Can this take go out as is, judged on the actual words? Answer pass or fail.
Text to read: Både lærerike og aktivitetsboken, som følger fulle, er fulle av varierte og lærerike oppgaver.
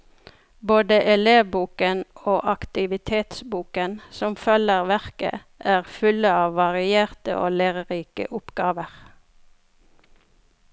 fail